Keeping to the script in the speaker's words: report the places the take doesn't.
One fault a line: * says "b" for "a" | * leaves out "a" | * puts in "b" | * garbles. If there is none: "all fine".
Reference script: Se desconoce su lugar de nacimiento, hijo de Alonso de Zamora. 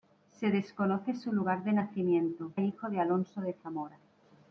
all fine